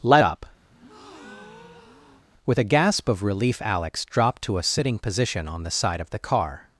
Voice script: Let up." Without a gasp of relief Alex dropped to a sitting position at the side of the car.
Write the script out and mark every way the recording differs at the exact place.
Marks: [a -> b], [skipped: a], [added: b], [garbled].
Let up." [Without -> With] a gasp of relief Alex dropped to a sitting position [at -> on] the side of the car.